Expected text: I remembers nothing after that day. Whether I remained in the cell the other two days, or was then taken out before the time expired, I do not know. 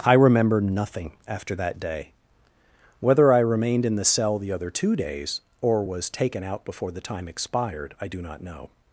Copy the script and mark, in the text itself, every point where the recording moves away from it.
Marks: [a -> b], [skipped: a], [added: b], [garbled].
I [remembers -> remember] nothing after that day. Whether I remained in the cell the other two days, or was [skipped: then] taken out before the time expired, I do not know.